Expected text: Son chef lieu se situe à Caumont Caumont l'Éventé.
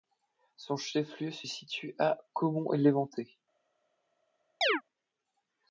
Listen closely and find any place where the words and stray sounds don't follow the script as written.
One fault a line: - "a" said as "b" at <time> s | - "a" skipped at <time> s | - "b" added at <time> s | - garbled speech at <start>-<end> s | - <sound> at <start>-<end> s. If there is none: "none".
- "Caumont" skipped at 2.7 s
- chirp at 4.6-4.8 s